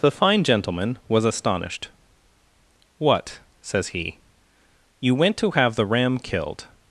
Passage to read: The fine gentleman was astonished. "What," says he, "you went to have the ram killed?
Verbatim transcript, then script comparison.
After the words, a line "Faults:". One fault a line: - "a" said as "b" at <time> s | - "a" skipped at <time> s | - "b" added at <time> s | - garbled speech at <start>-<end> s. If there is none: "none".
The fine gentleman was astonished. "What," says he, "you went to have the ram killed?
Faults:
none